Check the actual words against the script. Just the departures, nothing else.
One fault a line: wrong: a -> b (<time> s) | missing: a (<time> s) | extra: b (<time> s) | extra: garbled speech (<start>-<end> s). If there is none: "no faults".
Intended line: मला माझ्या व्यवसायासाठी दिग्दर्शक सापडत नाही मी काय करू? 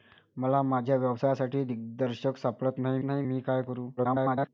extra: नाही (3.0 s)
extra: garbled speech (4.0-4.5 s)